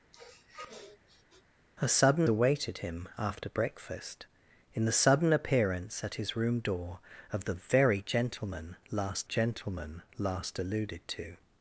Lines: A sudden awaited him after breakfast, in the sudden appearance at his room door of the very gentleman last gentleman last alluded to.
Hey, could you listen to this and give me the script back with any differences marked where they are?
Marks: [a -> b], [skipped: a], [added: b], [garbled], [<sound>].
[sniff] A sudden awaited him after breakfast, in the sudden appearance at his room door of the very gentleman last gentleman last alluded to.